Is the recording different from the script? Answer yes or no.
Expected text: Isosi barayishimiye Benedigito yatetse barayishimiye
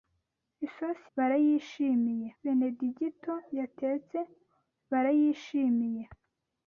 no